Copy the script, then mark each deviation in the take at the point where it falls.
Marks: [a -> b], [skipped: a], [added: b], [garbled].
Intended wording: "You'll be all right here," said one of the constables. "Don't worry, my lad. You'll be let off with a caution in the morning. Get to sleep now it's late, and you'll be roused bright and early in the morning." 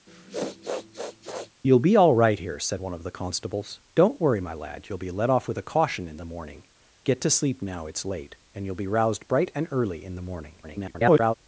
"You'll be all right here," said one of the constables. "Don't worry, my lad. You'll be let off with a caution in the morning. Get to sleep now it's late, and you'll be roused bright and early in the morning." [garbled]